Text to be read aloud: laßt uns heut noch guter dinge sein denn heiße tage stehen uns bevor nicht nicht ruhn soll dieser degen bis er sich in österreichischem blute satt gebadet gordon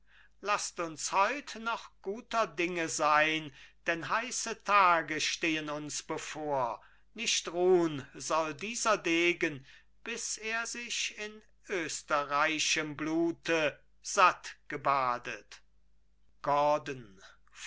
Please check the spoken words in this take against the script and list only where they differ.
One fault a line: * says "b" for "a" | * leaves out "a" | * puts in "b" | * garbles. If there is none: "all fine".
* leaves out "nicht"